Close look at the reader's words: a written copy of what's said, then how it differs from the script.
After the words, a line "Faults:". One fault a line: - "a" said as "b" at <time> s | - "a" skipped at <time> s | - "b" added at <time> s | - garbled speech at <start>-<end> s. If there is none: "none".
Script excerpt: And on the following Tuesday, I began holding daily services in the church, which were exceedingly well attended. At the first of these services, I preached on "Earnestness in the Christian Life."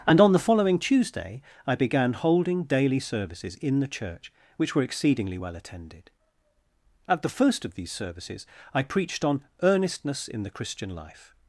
And on the following Tuesday, I began holding daily services in the church, which were exceedingly well attended. At the first of these services, I preached on "Earnestness in the Christian Life."
Faults:
none